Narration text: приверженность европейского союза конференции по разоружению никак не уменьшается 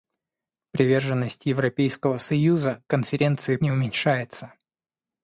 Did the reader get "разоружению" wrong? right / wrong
wrong